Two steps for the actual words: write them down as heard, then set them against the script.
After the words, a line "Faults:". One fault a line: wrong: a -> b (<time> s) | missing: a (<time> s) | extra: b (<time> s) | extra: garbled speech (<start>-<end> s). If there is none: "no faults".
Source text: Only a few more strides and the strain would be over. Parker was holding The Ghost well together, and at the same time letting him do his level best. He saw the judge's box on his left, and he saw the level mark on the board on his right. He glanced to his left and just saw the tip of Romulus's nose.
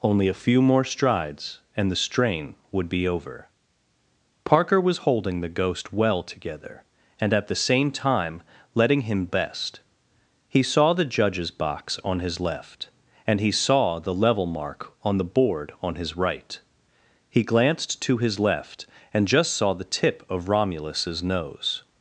Only a few more strides and the strain would be over. Parker was holding The Ghost well together, and at the same time letting him best. He saw the judge's box on his left, and he saw the level mark on the board on his right. He glanced to his left and just saw the tip of Romulus's nose.
Faults:
missing: do his level (9.3 s)